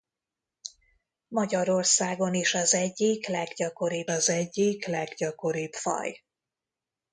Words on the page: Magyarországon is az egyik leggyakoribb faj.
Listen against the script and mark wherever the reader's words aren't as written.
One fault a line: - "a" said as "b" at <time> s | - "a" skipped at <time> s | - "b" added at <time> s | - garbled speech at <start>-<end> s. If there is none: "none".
- "az egyik leggyakoribb" added at 4.1 s